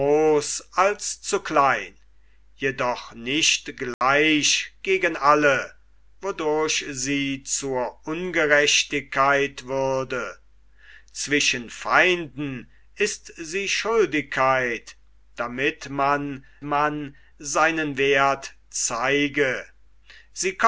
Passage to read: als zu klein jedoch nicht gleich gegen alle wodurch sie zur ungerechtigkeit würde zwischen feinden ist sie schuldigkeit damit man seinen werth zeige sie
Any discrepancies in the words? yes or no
yes